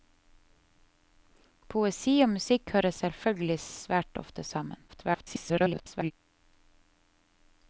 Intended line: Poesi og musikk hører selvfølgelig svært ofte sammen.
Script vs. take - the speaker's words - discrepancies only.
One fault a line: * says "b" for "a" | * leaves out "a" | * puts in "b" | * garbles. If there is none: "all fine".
* garbles